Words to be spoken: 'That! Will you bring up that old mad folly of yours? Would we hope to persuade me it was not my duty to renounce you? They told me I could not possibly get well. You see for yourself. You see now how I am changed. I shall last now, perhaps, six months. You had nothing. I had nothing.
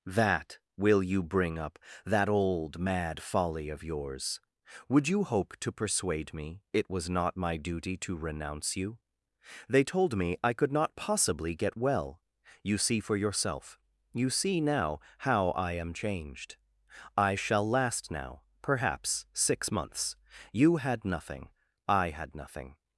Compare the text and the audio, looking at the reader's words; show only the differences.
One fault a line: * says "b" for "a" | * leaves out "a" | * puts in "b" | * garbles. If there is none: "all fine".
* says "you" for "we"